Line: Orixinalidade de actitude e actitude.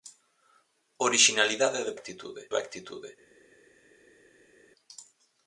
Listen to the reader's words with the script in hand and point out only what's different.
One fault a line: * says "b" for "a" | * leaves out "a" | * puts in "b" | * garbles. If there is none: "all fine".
all fine